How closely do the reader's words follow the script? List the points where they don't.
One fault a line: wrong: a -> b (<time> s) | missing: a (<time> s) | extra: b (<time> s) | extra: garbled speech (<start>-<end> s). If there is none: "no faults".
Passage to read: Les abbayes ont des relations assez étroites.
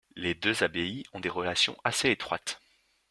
extra: deux (0.3 s)